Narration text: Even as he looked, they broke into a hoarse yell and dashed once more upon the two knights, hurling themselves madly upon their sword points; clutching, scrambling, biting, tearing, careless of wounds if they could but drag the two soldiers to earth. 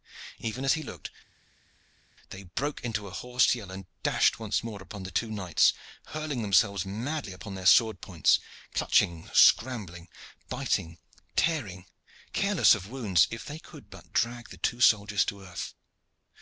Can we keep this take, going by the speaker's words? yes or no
yes